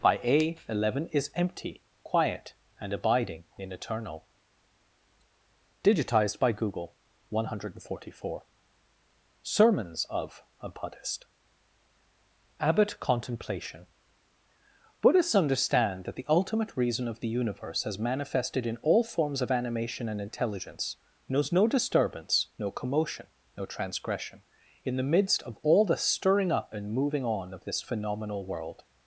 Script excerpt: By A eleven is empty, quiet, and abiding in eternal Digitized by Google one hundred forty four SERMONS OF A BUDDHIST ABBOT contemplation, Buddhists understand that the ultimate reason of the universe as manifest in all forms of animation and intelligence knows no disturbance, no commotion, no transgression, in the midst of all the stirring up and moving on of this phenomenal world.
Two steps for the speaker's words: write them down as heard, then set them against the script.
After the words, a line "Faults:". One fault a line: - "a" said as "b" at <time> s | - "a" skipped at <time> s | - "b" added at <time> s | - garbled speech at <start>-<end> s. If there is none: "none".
By A eleven is empty, quiet, and abiding in eternal Digitized by Google one hundred forty four SERMONS OF A BUDDHIST ABBOT contemplation, Buddhists understand that the ultimate reason of the universe as manifested in all forms of animation and intelligence knows no disturbance, no commotion, no transgression, in the midst of all the stirring up and moving on of this phenomenal world.
Faults:
- "manifest" said as "manifested" at 18.0 s